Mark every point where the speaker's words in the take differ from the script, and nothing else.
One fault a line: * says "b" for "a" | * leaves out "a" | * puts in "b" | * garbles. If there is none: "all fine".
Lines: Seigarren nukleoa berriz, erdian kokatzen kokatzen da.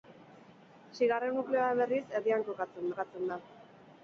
all fine